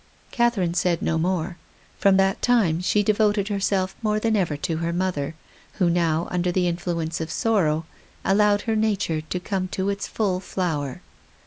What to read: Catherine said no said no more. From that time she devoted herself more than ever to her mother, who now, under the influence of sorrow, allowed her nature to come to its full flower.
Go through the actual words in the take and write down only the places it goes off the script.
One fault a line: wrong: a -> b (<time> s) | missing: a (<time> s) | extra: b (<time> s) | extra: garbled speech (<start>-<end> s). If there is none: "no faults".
missing: said no (1.2 s)